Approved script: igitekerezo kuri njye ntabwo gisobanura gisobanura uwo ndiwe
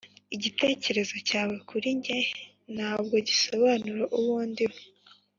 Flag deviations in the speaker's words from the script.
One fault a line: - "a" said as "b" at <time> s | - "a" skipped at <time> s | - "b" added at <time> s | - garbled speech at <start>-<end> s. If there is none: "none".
- "cyawe" added at 1.3 s
- "gisobanura" skipped at 4.0 s